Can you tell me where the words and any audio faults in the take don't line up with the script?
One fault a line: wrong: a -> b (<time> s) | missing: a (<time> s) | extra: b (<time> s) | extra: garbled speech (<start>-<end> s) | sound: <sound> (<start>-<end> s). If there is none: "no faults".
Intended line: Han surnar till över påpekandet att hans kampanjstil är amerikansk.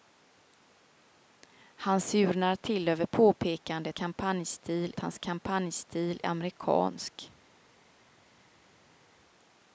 wrong: att -> kampanjstil (3.9 s)
missing: är (6.2 s)